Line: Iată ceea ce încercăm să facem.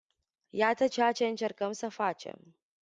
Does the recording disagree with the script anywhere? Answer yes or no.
no